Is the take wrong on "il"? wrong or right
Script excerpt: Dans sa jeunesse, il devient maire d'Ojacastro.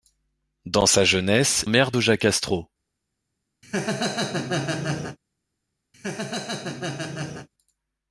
wrong